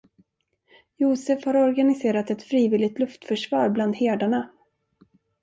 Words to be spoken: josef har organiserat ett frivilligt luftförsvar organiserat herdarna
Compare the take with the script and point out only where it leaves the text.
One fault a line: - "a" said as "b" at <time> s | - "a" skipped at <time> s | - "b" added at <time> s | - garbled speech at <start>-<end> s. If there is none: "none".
- "organiserat" said as "bland" at 3.7 s